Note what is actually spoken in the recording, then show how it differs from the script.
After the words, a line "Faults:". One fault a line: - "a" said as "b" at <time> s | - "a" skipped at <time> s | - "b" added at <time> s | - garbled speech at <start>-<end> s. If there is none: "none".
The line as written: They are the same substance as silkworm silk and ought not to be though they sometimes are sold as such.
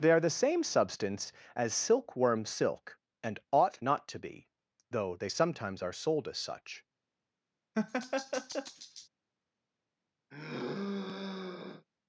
They are the same substance as silkworm silk and ought not to be though they sometimes are sold as such.
Faults:
none